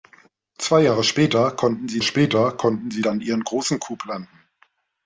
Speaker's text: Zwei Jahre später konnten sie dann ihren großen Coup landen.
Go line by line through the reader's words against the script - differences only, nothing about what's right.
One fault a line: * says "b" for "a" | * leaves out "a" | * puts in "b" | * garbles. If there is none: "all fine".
* puts in "später konnten sie"